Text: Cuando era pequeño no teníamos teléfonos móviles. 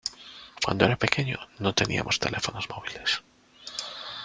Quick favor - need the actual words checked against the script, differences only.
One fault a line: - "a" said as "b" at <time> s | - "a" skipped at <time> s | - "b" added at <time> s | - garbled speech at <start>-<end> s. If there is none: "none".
none